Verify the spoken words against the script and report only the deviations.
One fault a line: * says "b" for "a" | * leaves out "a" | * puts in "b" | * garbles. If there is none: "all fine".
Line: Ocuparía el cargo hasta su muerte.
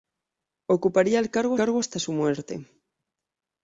* puts in "cargo"